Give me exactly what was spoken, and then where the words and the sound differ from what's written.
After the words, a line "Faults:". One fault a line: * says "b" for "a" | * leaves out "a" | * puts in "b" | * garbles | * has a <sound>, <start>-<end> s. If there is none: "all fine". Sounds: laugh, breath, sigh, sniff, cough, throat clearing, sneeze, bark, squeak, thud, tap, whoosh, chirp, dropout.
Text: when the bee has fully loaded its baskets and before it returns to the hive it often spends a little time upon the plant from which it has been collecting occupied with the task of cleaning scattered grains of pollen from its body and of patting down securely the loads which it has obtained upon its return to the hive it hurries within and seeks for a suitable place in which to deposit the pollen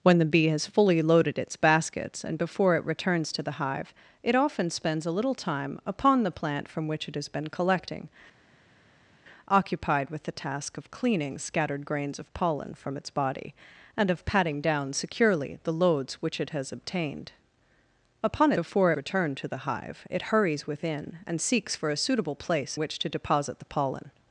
when the bee has fully loaded its baskets and before it returns to the hive it often spends a little time upon the plant from which it has been collecting occupied with the task of cleaning scattered grains of pollen from its body and of patting down securely the loads which it has obtained upon before return to the hive it hurries within and seeks for a suitable place which to deposit the pollen
Faults:
* says "before" for "its"
* leaves out "in"